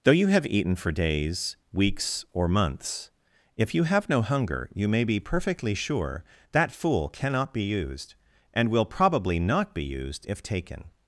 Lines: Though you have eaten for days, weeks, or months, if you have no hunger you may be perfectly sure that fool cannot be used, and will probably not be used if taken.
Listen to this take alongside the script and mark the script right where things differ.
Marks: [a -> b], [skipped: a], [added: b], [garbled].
Though you have eaten for days, weeks, or months, if you have no hunger you may be perfectly sure that fool cannot be used, and will probably not be used if taken.